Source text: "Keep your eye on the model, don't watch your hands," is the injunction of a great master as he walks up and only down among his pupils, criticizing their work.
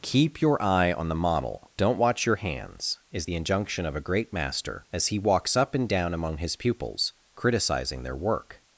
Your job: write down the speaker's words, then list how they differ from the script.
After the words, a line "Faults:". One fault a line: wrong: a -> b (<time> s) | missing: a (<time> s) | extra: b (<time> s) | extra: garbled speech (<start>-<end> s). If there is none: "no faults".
"Keep your eye on the model, don't watch your hands," is the injunction of a great master as he walks up and down among his pupils, criticizing their work.
Faults:
missing: only (5.9 s)